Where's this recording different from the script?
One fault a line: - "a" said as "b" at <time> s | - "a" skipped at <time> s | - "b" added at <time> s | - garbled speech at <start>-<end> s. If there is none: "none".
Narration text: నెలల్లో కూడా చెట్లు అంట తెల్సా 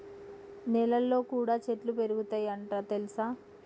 - "పెరుగుతయ్" added at 1.9 s